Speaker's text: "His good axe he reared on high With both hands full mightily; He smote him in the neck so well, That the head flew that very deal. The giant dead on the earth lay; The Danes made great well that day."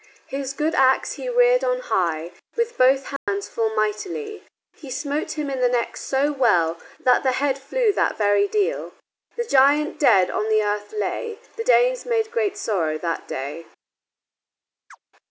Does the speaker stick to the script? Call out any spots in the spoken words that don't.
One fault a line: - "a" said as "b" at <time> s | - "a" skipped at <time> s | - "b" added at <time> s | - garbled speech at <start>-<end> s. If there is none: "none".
- "well" said as "sorrow" at 12.6 s